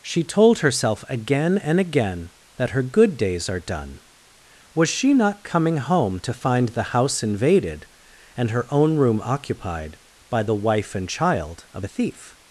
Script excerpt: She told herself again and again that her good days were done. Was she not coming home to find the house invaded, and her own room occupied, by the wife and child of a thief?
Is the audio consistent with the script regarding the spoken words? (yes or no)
no